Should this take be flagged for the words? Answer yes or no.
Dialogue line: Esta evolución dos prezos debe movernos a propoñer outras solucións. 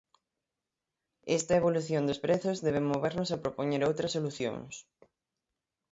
no